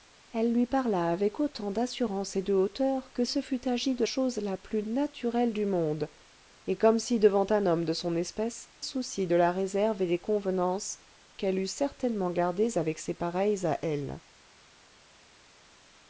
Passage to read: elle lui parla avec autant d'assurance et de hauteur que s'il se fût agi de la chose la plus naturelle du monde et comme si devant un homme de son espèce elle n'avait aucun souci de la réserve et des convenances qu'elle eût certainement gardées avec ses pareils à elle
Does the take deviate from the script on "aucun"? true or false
true